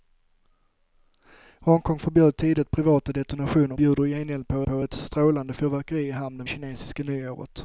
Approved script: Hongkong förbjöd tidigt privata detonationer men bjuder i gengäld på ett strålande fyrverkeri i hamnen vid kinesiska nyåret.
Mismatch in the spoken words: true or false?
true